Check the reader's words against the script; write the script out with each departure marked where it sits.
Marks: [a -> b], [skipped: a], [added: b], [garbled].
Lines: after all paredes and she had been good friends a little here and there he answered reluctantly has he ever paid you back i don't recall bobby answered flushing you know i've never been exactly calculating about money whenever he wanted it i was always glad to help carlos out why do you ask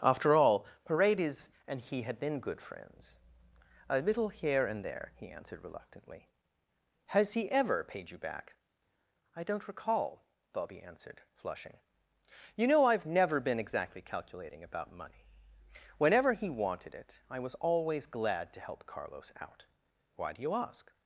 after all paredes and [she -> he] had been good friends a little here and there he answered reluctantly has he ever paid you back i don't recall bobby answered flushing you know i've never been exactly calculating about money whenever he wanted it i was always glad to help carlos out why do you ask